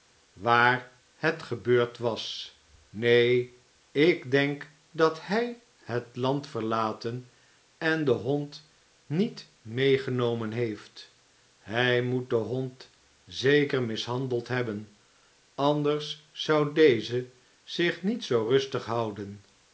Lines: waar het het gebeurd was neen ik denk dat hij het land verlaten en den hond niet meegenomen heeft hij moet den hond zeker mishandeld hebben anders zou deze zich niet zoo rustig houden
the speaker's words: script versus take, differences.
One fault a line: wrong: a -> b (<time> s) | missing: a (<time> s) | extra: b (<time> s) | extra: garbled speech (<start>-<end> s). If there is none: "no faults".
missing: het (1.4 s)